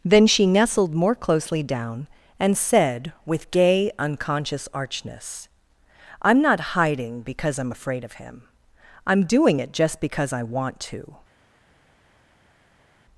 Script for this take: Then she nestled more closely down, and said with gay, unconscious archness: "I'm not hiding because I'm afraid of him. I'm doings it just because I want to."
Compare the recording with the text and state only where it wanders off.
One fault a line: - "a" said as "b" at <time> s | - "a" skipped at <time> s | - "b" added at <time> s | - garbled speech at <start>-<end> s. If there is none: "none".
- "doings" said as "doing" at 9.2 s